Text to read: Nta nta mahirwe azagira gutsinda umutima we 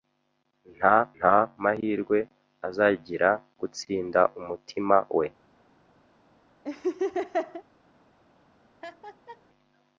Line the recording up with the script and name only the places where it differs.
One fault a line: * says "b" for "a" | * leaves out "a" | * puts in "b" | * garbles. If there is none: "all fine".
all fine